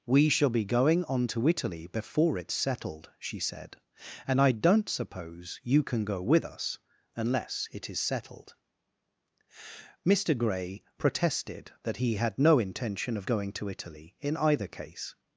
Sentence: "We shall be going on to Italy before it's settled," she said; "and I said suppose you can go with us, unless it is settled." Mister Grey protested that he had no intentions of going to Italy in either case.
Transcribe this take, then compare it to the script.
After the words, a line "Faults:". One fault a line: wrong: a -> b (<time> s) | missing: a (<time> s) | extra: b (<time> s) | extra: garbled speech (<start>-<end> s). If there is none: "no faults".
"We shall be going on to Italy before it's settled," she said; "and I don't suppose you can go with us, unless it is settled." Mister Grey protested that he had no intention of going to Italy in either case.
Faults:
wrong: said -> don't (4.5 s)
wrong: intentions -> intention (12.6 s)